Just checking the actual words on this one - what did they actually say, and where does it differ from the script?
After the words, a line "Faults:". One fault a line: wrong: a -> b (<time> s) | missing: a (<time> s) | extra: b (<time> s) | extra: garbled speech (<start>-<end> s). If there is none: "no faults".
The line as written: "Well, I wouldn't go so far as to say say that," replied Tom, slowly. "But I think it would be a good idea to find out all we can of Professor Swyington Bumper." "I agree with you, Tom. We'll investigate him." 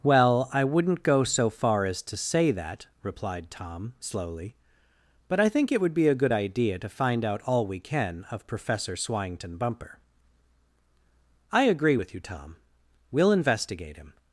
"Well, I wouldn't go so far as to say that," replied Tom, slowly. "But I think it would be a good idea to find out all we can of Professor Swyington Bumper." "I agree with you, Tom. We'll investigate him."
Faults:
missing: say (2.5 s)